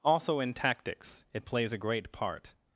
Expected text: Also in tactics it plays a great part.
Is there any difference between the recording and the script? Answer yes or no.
no